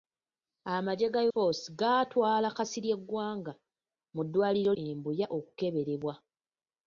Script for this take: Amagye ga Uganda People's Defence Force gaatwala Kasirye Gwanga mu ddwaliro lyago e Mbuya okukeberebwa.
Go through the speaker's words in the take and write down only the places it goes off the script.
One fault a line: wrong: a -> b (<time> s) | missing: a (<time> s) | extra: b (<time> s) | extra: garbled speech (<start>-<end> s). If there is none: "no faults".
missing: Uganda People's Defence (1.2 s)
missing: lyago (4.7 s)